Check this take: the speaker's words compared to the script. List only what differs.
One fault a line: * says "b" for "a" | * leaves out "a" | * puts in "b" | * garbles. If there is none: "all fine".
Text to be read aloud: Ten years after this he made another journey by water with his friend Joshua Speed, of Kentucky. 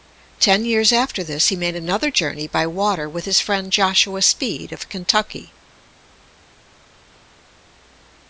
all fine